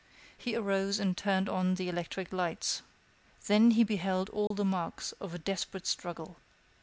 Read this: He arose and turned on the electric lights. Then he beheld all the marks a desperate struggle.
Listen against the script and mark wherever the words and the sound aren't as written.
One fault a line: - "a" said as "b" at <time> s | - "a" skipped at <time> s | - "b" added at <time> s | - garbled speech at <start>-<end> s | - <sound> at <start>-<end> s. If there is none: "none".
- dropout at 4.5-4.5 s
- "of" added at 5.2 s